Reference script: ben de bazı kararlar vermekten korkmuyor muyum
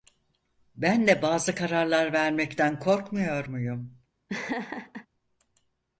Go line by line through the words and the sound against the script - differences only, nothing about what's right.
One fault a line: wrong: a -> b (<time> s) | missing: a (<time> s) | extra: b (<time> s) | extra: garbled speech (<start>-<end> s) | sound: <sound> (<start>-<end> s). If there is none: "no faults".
sound: laugh (4.3-5.1 s)